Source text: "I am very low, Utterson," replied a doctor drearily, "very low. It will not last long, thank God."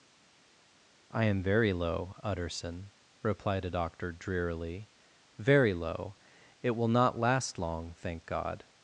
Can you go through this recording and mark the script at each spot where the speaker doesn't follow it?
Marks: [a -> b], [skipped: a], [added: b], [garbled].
"I am very low, Utterson," replied a doctor drearily, "very low. It will not last long, thank God."